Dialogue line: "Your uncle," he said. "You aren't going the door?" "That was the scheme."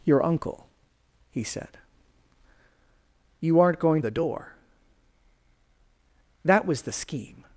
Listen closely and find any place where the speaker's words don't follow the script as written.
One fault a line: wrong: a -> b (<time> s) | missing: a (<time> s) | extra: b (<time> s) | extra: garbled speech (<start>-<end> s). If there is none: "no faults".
no faults